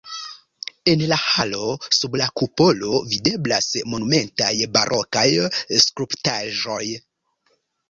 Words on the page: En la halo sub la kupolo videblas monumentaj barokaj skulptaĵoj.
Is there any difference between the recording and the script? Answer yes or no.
no